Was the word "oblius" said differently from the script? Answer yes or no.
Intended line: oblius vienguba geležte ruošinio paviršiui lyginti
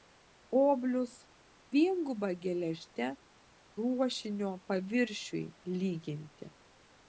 no